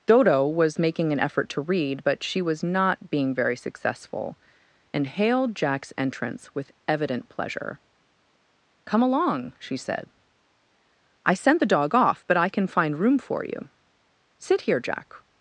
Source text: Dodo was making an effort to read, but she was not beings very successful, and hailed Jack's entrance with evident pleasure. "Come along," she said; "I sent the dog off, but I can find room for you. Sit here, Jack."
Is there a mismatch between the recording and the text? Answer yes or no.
yes